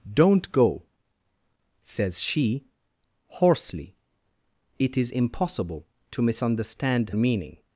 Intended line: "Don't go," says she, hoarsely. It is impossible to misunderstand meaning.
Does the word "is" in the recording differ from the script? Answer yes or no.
no